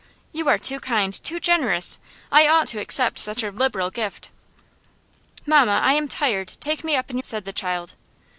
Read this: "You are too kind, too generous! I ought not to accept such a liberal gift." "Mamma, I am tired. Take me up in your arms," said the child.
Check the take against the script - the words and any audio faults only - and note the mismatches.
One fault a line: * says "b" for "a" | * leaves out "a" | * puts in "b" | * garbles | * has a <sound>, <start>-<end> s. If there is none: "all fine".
* leaves out "not"
* leaves out "your arms"